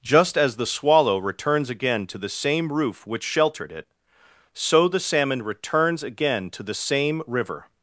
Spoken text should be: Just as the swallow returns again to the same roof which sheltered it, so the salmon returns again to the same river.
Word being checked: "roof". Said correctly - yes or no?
yes